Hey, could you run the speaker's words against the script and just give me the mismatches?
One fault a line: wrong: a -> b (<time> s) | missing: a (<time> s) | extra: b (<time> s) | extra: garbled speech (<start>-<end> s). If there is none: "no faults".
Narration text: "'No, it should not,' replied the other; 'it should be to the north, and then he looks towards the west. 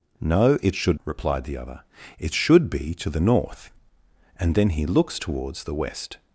missing: not (1.0 s)